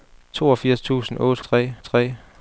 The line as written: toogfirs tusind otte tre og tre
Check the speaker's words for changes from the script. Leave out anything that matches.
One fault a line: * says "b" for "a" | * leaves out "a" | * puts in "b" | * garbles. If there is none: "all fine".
all fine